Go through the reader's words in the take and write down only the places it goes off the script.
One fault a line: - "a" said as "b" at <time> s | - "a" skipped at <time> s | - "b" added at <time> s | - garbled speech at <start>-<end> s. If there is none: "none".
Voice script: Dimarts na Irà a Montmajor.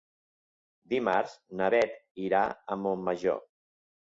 - "Beth" added at 1.7 s